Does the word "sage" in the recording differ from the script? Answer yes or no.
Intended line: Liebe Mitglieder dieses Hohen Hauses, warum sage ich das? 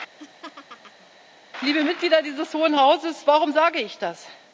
no